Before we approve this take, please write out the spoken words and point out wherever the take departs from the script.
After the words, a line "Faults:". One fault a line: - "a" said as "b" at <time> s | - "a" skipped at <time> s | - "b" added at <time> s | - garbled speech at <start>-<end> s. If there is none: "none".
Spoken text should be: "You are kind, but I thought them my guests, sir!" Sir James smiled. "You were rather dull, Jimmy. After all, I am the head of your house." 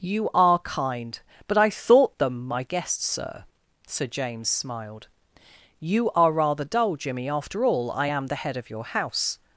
"You are kind, but I thought them my guests, sir!" Sir James smiled. "You are rather dull, Jimmy. After all, I am the head of your house."
Faults:
- "were" said as "are" at 6.1 s